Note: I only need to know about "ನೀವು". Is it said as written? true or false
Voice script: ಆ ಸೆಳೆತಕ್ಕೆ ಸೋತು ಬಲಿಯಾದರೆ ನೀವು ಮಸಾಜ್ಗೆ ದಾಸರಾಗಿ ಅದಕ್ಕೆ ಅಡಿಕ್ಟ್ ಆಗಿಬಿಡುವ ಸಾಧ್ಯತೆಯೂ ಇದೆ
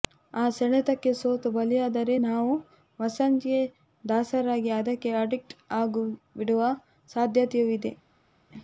false